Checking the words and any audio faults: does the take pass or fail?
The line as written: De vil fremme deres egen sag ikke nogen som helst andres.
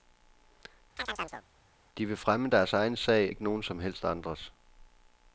fail